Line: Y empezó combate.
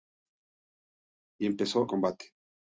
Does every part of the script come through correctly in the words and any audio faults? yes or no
yes